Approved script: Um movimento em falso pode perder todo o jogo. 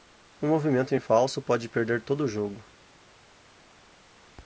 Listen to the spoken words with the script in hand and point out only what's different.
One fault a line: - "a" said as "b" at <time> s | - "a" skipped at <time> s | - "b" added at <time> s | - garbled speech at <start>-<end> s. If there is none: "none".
none